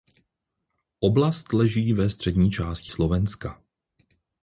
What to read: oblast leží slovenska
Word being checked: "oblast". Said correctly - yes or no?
yes